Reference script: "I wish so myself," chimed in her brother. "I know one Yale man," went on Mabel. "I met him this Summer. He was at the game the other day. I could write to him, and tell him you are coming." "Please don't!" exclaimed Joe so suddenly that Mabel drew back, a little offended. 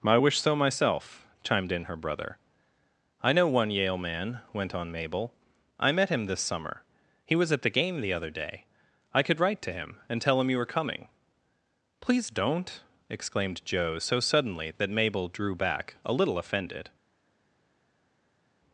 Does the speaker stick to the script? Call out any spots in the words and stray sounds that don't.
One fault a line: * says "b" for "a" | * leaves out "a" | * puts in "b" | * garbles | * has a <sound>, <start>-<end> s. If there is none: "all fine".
* says "were" for "are"